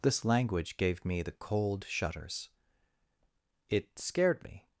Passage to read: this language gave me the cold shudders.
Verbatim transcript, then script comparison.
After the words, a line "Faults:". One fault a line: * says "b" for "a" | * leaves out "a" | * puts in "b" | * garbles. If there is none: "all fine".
this language gave me the cold shudders. It scared me
Faults:
* puts in "It scared me"